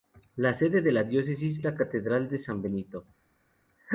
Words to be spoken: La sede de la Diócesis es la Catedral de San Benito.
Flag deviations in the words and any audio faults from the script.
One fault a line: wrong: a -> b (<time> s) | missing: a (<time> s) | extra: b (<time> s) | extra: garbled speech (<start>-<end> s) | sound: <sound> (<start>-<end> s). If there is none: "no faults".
missing: es (1.6 s)